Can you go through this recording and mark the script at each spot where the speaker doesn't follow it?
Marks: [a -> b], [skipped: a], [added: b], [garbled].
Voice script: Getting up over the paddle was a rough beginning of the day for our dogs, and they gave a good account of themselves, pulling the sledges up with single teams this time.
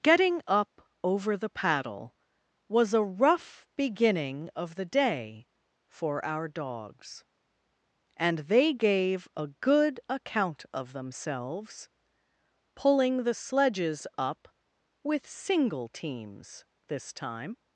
Getting up over the paddle was a rough beginning of the day for our dogs, and they gave a good account of themselves, pulling the sledges up with single teams this time.